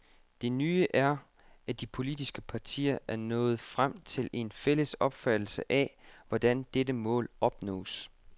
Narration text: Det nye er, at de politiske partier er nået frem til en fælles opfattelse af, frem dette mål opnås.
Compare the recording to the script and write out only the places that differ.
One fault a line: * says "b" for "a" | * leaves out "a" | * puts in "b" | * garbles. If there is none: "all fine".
* says "hvordan" for "frem"